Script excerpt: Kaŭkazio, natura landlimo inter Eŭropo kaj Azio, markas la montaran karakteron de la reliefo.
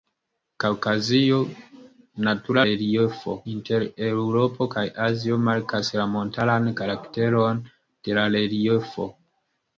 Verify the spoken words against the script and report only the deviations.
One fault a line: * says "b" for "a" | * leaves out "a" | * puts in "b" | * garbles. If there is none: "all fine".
* says "reliefo" for "landlimo"